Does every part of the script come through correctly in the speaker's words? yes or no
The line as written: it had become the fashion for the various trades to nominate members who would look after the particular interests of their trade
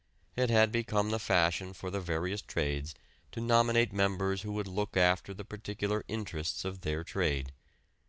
yes